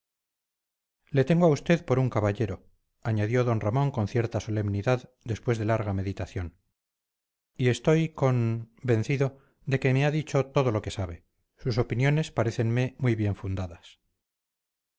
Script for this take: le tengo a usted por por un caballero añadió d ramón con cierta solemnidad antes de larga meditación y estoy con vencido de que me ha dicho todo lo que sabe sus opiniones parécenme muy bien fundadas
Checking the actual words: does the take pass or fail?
fail